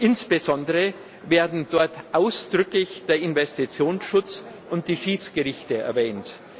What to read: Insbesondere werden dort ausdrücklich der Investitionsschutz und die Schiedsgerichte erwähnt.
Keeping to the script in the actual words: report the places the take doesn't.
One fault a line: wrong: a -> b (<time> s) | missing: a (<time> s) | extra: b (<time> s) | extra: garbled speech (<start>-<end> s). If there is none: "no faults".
no faults